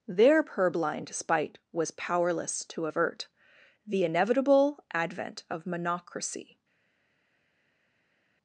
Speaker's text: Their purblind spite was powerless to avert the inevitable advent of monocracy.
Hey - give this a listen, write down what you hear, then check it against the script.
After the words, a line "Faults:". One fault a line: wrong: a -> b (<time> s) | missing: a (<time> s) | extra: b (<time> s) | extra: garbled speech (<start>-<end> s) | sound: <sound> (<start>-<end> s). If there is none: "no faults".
Their purblind spite was powerless to avert the inevitable advent of monocracy.
Faults:
no faults